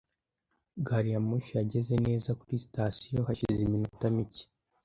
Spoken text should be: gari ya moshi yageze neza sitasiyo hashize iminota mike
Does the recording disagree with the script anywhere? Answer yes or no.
yes